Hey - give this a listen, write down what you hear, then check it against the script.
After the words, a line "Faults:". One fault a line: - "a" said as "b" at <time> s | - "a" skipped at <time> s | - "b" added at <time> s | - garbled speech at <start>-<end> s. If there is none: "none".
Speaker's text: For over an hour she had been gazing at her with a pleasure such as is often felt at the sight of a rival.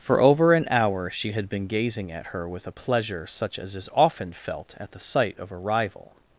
For over an hour she had been gazing at her with a pleasure such as is often felt at the sight of a rival.
Faults:
none